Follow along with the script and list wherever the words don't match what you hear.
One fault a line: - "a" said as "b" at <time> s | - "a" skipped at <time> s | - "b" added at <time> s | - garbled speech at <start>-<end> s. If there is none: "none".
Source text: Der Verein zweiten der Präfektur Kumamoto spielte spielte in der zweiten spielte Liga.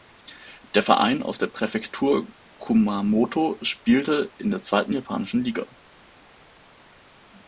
- "zweiten" said as "aus" at 1.2 s
- "spielte" skipped at 4.3 s
- "spielte" said as "japanischen" at 4.9 s